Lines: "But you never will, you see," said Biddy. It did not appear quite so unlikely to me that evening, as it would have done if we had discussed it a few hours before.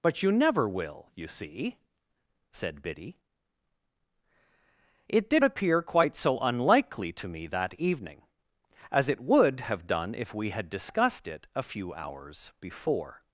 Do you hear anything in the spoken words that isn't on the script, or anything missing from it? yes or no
yes